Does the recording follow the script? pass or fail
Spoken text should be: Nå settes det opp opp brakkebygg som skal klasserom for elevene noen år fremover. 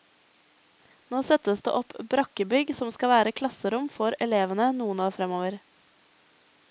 fail